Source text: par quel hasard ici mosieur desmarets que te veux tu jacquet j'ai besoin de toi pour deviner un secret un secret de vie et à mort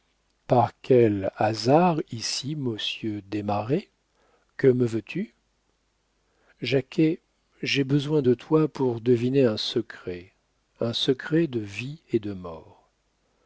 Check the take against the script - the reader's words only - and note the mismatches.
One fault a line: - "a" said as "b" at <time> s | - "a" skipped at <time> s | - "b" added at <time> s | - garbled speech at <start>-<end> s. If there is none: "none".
- "te" said as "me" at 4.7 s
- "à" said as "de" at 12.2 s